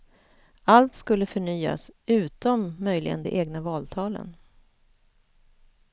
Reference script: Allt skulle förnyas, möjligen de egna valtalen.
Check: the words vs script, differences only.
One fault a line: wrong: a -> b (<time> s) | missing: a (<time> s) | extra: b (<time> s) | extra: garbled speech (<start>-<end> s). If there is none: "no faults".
extra: utom (2.0 s)